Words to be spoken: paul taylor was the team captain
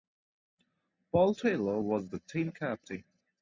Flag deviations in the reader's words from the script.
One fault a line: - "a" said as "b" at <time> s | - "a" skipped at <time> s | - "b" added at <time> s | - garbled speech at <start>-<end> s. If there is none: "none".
none